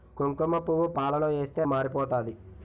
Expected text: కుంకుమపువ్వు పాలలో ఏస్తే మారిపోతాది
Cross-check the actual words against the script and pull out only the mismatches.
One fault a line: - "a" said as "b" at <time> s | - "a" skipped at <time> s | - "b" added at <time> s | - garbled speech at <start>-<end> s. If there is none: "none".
none